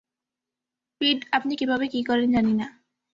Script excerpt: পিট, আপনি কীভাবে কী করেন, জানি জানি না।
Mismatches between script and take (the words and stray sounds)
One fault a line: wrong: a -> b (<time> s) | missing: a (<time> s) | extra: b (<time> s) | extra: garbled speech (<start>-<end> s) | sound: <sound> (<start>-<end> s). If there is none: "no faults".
missing: জানি (2.5 s)